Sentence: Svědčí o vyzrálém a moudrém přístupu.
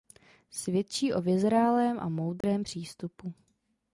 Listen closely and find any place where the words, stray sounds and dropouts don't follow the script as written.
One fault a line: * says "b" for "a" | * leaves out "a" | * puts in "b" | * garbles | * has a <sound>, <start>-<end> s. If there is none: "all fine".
* has a dropout, 2.4-2.4 s